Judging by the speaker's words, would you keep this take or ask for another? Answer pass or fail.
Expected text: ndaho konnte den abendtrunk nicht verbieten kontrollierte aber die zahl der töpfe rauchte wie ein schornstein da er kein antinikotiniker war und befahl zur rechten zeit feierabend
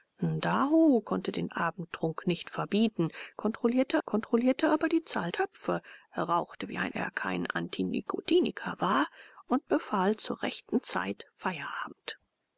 fail